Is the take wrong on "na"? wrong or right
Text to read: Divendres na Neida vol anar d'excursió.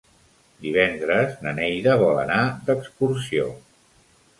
right